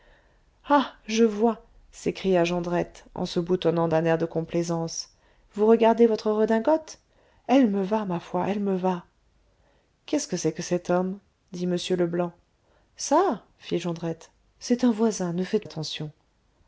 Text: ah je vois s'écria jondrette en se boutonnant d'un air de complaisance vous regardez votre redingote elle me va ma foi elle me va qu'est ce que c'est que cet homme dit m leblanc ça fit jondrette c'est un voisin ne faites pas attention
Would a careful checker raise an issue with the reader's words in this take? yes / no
yes